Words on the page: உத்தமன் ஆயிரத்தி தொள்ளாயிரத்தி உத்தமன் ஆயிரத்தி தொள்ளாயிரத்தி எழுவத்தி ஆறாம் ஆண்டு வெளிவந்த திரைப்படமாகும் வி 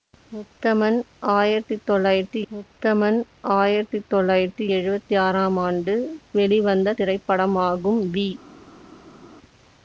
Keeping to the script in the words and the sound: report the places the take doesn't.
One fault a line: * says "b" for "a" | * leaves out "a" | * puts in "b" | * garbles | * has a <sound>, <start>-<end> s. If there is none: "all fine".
all fine